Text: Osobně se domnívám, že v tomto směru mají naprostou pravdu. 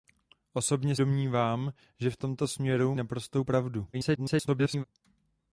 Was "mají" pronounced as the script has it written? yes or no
no